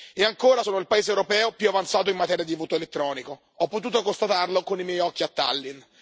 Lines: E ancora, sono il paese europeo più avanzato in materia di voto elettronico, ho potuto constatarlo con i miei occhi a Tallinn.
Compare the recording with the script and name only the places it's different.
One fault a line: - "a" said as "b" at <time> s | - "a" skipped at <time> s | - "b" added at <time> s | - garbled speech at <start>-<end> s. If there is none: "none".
none